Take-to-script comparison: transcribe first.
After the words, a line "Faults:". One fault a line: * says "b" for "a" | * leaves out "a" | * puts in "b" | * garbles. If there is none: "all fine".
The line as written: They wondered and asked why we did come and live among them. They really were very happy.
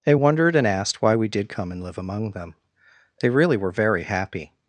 They wondered and asked why we did come and live among them. They really were very happy.
Faults:
all fine